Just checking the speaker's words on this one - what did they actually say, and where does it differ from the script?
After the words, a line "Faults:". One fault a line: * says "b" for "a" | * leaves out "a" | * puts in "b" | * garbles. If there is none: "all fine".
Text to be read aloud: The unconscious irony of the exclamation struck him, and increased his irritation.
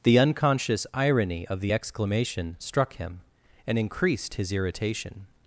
The unconscious irony of the exclamation struck him, and increased his irritation.
Faults:
all fine